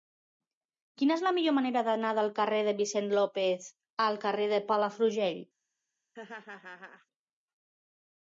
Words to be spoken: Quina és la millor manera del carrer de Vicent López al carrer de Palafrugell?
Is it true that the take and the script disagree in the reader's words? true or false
true